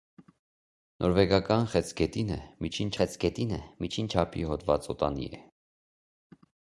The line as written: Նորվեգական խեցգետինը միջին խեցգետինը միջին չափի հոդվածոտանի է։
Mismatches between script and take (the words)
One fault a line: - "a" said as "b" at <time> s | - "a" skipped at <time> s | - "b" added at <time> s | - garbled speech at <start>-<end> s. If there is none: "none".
none